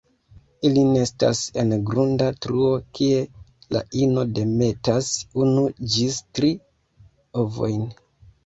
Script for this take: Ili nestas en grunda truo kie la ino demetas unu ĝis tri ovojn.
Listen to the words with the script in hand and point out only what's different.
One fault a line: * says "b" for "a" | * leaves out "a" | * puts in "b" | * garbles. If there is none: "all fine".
all fine